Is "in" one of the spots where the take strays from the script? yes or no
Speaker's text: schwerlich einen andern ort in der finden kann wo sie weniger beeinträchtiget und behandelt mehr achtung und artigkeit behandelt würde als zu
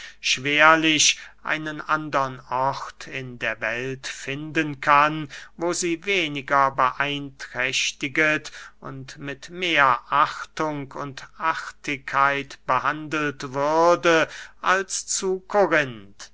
no